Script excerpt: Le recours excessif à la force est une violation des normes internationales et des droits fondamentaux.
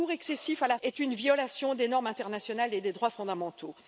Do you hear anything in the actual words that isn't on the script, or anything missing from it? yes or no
yes